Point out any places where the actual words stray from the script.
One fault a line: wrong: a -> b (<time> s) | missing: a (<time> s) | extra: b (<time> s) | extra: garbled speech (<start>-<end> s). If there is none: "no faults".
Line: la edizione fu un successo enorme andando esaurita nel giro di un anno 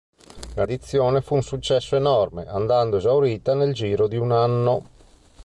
no faults